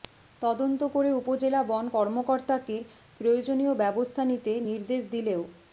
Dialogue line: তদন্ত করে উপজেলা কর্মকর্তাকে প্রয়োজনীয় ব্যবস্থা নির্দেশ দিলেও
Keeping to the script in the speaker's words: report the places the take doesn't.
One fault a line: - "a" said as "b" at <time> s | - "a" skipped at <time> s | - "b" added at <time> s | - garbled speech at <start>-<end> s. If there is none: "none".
- "বন" added at 1.6 s
- "নিতে" added at 4.3 s